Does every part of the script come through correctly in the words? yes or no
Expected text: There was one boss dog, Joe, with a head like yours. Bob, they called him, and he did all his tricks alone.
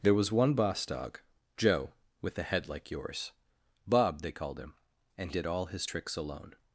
no